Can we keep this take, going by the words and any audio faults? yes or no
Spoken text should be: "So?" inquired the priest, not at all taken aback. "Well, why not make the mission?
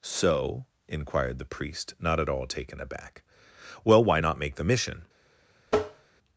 no